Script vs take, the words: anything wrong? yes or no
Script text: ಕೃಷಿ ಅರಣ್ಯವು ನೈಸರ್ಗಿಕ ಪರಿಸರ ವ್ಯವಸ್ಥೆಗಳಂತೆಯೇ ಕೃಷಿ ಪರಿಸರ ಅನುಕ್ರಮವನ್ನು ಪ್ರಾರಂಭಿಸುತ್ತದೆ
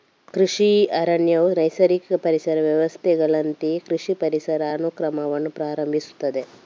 no